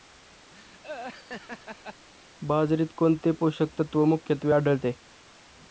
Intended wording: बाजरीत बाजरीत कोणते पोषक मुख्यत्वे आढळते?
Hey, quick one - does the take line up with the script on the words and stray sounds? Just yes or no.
no